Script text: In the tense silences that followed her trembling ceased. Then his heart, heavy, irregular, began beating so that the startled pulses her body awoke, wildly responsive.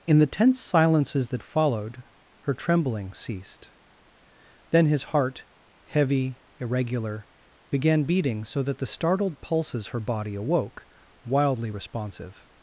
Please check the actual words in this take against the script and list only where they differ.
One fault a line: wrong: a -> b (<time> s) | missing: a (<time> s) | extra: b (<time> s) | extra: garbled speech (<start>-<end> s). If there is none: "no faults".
no faults